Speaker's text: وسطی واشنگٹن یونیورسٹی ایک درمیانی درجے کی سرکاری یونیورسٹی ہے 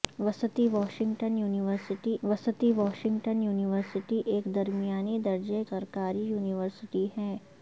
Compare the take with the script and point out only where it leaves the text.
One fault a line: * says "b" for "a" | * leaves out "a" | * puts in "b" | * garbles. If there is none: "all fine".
* puts in "وسطی واشنگٹن یونیورسٹی"
* leaves out "کی"